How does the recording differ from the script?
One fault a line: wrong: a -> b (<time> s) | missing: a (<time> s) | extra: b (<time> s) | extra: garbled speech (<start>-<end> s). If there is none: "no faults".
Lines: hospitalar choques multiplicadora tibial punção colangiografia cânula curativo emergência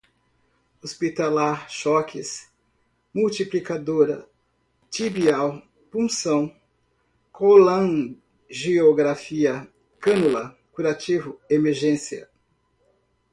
no faults